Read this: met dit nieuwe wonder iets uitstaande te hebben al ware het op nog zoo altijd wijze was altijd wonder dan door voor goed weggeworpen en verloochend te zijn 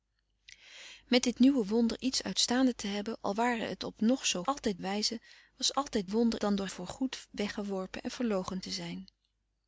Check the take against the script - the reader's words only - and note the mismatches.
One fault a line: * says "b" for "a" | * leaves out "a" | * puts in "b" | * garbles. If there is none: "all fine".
all fine